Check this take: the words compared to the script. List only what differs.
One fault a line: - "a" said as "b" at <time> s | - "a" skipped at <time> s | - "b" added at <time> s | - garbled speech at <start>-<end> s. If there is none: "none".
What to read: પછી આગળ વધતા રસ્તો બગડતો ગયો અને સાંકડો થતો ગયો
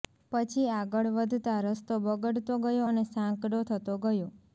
none